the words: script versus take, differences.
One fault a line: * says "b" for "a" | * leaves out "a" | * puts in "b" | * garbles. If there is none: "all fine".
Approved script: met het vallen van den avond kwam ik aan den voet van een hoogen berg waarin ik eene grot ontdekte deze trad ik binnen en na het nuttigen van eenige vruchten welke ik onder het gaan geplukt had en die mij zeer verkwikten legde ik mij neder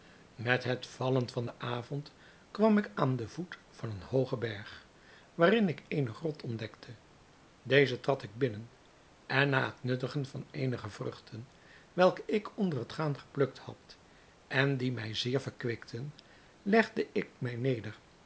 all fine